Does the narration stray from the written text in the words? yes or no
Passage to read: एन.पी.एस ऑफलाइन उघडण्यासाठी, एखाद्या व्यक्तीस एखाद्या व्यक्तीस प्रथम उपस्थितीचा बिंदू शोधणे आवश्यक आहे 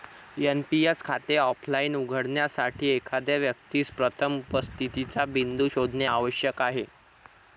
yes